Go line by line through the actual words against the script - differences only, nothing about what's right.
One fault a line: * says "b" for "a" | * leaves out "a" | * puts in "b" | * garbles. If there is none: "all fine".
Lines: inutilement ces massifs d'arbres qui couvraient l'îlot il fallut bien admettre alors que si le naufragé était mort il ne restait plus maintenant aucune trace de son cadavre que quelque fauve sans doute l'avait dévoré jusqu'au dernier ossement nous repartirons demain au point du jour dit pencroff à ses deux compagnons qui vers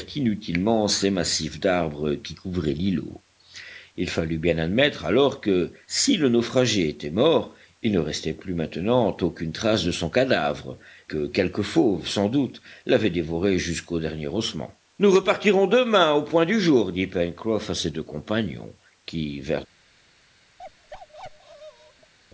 all fine